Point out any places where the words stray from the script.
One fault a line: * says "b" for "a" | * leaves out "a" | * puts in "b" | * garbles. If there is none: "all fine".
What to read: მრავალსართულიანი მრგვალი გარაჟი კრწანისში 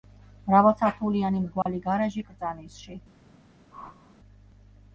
all fine